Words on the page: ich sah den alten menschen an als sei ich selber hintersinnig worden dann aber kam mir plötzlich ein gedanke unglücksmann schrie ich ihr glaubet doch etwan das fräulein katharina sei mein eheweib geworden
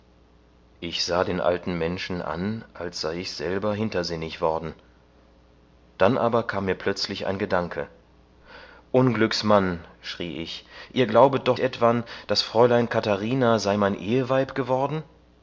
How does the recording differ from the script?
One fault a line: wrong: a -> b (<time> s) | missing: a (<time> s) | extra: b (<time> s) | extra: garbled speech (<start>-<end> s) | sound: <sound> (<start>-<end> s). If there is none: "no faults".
no faults